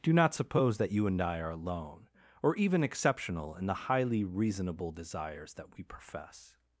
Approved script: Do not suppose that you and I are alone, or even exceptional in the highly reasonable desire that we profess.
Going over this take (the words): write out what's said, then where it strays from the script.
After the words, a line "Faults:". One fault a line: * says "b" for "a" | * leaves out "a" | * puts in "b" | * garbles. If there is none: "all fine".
Do not suppose that you and I are alone, or even exceptional in the highly reasonable desires that we profess.
Faults:
* says "desires" for "desire"